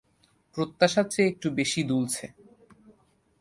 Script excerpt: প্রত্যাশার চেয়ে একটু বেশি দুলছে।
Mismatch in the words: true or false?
false